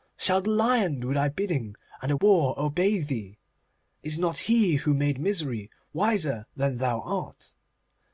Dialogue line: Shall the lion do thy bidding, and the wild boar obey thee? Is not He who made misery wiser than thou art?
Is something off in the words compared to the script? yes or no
yes